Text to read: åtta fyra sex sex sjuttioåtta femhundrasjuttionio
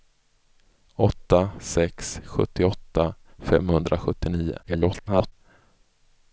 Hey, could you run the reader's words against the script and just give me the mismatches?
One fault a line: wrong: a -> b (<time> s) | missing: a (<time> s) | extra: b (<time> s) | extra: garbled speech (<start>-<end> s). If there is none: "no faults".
missing: fyra sex (1.5 s)
extra: garbled speech (4.6-5.3 s)